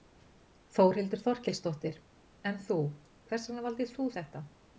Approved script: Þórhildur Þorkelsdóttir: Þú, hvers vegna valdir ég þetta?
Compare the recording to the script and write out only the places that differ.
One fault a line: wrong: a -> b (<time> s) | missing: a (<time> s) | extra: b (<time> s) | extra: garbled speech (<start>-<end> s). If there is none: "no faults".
extra: En (2.5 s)
wrong: ég -> þú (4.0 s)